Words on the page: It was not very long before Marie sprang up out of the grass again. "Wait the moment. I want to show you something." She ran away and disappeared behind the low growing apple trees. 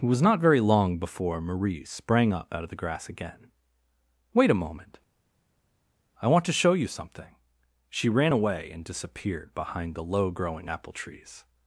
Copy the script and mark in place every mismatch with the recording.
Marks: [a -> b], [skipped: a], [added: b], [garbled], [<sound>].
It was not very long before Marie sprang up out of the grass again. "Wait [the -> a] moment. I want to show you something." She ran away and disappeared behind the low growing apple trees.